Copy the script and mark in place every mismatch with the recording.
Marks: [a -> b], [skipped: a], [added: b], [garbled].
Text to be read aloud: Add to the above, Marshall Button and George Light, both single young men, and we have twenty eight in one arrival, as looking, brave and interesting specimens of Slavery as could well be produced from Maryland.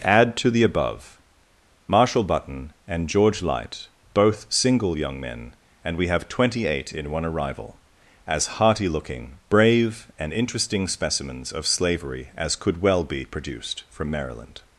Add to the above, Marshall Button and George Light, both single young men, and we have twenty eight in one arrival, as [added: hearty] looking, brave and interesting specimens of Slavery as could well be produced from Maryland.